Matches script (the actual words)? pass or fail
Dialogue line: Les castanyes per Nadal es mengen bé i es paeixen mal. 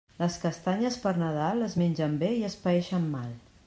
pass